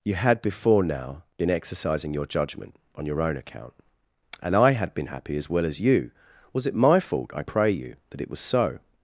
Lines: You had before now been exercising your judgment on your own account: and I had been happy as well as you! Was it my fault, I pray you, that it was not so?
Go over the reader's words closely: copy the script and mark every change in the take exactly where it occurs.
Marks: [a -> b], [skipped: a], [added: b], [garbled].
You had before now been exercising your judgment on your own account: and I had been happy as well as you! Was it my fault, I pray you, that it was [skipped: not] so?